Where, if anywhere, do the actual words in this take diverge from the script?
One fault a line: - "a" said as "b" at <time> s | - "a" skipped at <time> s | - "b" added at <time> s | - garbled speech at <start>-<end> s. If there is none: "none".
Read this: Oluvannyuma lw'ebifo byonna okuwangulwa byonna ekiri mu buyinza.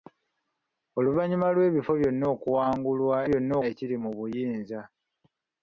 none